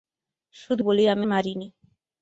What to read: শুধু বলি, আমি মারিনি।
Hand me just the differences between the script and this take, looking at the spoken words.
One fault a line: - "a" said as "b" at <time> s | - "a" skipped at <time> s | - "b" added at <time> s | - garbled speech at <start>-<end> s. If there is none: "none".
none